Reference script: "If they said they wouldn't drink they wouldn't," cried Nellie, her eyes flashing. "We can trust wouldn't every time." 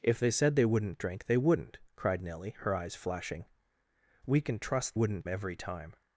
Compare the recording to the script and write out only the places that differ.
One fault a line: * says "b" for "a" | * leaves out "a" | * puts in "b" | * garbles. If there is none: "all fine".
all fine